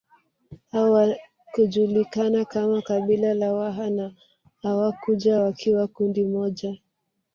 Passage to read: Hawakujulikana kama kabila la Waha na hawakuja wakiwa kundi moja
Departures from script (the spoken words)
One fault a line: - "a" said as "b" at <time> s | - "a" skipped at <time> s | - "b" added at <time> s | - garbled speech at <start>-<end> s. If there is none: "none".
none